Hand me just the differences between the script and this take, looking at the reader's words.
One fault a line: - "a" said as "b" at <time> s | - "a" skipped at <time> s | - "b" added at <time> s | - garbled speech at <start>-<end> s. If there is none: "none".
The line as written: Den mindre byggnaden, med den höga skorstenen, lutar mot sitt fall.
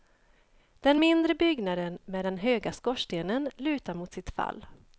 none